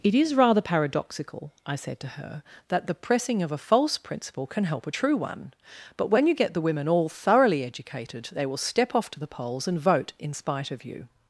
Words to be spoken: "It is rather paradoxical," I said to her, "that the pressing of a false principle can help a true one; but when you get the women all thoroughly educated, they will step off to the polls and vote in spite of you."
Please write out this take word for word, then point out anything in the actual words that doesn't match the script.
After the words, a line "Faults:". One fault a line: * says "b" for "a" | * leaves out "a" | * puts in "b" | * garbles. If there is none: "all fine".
"It is rather paradoxical," I said to her, "that the pressing of a false principle can help a true one; but when you get the women all thoroughly educated, they will step off to the polls and vote in spite of you."
Faults:
all fine